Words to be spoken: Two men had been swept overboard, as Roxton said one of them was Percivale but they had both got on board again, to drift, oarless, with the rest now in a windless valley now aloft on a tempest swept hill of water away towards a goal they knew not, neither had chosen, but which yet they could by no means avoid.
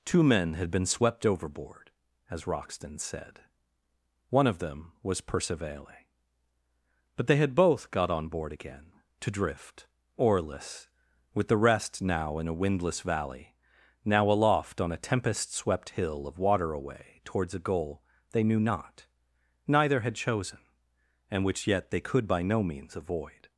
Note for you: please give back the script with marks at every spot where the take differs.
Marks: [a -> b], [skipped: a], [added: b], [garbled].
Two men had been swept overboard, as Roxton said one of them was Percivale but they had both got on board again, to drift, oarless, with the rest now in a windless valley now aloft on a tempest swept hill of water away towards a goal they knew not, neither had chosen, [but -> and] which yet they could by no means avoid.